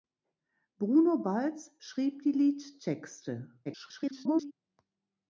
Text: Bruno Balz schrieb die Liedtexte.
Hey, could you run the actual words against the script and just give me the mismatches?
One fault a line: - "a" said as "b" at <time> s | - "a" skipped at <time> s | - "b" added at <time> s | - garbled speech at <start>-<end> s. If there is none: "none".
- garbled speech at 3.6-4.5 s